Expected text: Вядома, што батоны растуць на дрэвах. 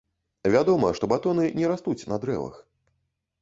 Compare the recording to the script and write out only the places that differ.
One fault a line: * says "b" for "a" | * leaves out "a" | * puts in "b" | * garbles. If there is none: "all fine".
* puts in "не"